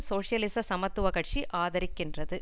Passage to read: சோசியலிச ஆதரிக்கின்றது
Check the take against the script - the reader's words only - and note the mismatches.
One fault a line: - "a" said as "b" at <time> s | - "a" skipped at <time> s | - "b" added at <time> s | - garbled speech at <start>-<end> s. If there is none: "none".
- "சமத்துவ கட்சி" added at 0.6 s